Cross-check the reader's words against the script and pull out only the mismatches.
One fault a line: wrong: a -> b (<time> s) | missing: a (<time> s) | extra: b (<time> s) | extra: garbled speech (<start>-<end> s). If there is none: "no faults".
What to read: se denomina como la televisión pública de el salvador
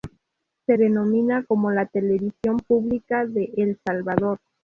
no faults